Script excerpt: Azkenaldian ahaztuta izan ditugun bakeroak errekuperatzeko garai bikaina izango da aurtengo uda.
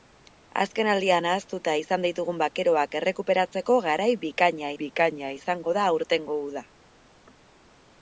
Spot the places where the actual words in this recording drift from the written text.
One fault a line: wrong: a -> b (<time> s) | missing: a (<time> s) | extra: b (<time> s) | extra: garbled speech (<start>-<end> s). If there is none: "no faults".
extra: bikaina (4.8 s)